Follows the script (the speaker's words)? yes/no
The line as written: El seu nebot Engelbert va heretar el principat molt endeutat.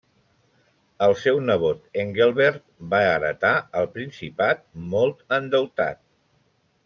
yes